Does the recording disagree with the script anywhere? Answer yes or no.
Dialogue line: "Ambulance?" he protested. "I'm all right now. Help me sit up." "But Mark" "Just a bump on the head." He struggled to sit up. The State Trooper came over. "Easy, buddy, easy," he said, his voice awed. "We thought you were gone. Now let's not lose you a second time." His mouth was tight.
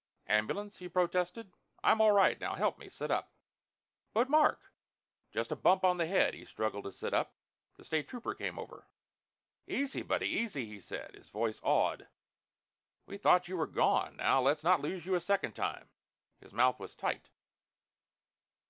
no